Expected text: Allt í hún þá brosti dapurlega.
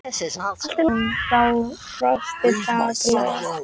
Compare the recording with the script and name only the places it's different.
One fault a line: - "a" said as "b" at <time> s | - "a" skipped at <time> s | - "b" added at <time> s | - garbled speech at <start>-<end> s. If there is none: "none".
none